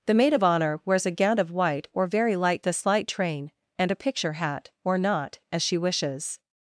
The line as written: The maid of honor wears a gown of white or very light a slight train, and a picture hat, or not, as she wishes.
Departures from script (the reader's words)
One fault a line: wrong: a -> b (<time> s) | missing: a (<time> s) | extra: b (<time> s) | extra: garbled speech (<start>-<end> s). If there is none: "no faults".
no faults